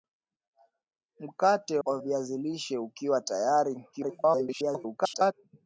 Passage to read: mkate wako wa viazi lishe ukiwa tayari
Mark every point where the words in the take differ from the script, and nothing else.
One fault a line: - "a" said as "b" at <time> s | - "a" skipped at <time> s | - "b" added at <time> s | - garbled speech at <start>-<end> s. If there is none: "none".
- "wako" skipped at 1.8 s
- garbled speech at 3.9-5.3 s